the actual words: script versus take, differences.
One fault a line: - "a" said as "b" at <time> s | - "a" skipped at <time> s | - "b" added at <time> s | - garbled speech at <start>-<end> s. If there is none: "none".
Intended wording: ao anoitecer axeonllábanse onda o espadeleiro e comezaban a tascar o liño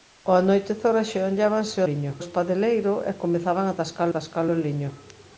- "onda" said as "liño" at 1.9 s
- "tascar" added at 4.1 s